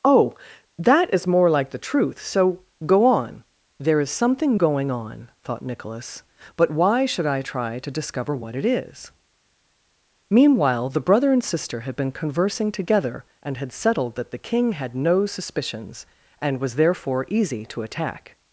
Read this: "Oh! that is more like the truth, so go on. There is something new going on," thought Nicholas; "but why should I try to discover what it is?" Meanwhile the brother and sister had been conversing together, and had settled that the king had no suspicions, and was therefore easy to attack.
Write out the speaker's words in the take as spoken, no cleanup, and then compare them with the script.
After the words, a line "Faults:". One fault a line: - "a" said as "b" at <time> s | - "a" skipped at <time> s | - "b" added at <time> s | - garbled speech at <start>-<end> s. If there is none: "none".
"Oh! that is more like the truth, so go on. There is something going on," thought Nicholas; "but why should I try to discover what it is?" Meanwhile the brother and sister had been conversing together, and had settled that the king had no suspicions, and was therefore easy to attack.
Faults:
- "new" skipped at 4.6 s